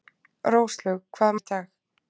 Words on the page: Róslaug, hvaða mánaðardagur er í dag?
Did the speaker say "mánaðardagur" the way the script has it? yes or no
no